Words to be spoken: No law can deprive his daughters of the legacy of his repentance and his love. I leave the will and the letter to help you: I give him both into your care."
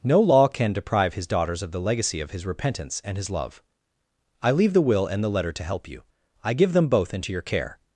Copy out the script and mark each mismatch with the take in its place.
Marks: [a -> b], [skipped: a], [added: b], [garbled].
No law can deprive his daughters of the legacy of his repentance and his love. I leave the will and the letter to help you: I give [him -> them] both into your care."